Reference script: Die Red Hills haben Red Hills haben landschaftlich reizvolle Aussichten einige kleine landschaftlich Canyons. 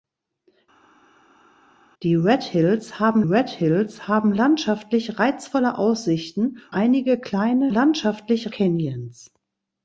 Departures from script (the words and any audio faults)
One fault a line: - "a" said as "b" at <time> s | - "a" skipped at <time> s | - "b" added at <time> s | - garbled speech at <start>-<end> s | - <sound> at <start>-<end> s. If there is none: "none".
none